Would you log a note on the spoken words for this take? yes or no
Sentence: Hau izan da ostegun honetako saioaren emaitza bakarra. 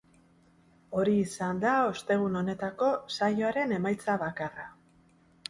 yes